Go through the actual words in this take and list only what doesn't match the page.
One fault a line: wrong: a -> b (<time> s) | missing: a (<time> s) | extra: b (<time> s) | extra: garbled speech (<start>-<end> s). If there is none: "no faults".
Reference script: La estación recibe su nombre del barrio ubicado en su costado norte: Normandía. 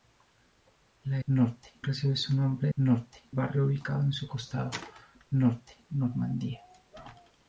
wrong: estación -> norte (1.3 s)
wrong: del -> norte (2.8 s)